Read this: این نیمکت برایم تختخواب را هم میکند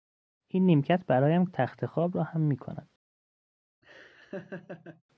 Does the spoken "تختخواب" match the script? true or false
true